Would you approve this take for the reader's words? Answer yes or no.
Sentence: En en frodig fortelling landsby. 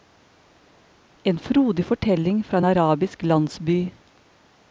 no